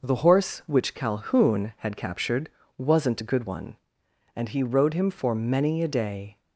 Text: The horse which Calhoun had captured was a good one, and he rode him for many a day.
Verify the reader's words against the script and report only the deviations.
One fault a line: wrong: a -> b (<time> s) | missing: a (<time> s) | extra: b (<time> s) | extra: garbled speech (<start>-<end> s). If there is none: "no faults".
wrong: was -> wasn't (2.8 s)